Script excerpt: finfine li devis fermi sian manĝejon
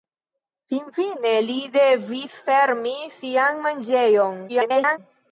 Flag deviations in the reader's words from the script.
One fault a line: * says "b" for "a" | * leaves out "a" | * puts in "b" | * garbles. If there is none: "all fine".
* garbles